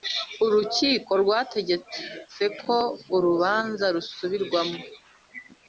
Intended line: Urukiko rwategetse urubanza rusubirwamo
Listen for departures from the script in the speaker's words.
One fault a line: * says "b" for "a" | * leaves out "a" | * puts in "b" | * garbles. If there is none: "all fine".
* puts in "ko"